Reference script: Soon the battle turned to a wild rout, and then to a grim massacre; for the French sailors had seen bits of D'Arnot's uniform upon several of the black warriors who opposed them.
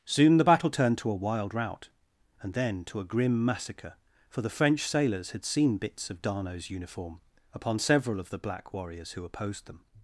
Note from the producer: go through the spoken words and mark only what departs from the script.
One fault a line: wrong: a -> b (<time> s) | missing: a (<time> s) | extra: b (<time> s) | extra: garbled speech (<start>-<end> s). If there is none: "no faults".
no faults